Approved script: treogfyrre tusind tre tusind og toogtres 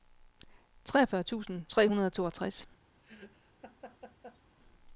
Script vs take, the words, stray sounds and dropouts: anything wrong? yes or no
yes